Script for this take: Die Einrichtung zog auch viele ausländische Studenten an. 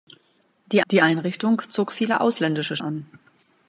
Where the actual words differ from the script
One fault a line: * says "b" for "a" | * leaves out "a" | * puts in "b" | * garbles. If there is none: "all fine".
* puts in "die"
* leaves out "auch"
* leaves out "Studenten"